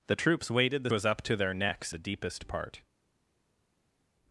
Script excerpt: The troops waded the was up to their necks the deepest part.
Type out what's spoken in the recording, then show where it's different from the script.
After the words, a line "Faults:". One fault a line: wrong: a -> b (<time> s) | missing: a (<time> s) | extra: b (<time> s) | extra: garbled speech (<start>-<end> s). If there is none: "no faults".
The troops waded the was up to their necks the deepest part.
Faults:
no faults